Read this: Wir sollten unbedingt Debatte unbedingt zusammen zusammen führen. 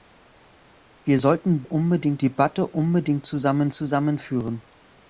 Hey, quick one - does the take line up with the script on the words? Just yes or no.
yes